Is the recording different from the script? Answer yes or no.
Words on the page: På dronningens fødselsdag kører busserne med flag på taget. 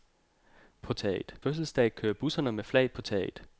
yes